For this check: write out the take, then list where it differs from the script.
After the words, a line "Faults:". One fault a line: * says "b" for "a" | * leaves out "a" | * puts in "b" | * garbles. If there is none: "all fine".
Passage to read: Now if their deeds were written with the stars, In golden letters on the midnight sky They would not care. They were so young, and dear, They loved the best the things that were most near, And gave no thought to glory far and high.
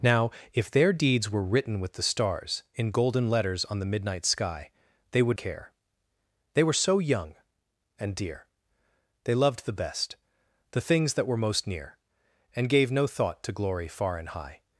Now if their deeds were written with the stars, In golden letters on the midnight sky They would care. They were so young, and dear, They loved the best the things that were most near, And gave no thought to glory far and high.
Faults:
* leaves out "not"